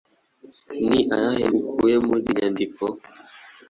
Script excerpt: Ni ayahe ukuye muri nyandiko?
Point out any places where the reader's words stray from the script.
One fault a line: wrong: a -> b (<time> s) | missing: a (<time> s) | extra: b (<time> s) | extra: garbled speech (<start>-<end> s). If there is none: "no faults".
no faults